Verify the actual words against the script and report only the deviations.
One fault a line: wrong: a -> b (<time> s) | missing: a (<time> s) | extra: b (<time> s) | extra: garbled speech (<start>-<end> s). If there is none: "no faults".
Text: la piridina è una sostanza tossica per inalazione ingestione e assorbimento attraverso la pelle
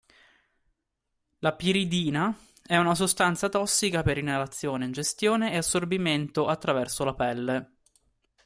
no faults